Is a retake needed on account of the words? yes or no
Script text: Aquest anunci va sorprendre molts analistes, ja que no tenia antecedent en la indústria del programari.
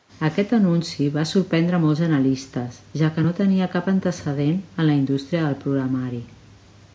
yes